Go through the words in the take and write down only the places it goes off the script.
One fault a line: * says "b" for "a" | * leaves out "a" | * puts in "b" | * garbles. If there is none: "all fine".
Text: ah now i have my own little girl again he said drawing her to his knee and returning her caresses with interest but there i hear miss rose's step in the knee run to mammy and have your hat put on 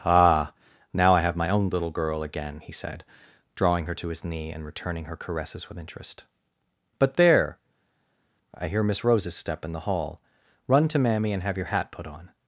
* says "hall" for "knee"